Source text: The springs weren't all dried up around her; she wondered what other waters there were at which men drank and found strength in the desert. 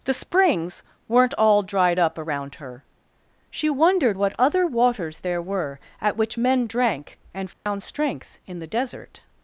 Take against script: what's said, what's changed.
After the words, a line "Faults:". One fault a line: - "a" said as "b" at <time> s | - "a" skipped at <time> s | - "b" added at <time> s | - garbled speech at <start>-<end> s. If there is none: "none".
The springs weren't all dried up around her; she wondered what other waters there were at which men drank and found strength in the desert.
Faults:
none